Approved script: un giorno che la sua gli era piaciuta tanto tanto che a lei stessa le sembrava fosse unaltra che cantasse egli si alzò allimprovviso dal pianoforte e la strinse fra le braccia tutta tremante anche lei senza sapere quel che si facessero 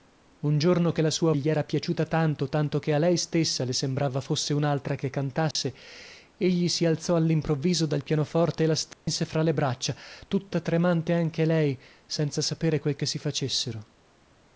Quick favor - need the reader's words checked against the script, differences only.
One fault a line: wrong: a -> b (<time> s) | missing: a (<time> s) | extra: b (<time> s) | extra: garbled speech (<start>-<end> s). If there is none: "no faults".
no faults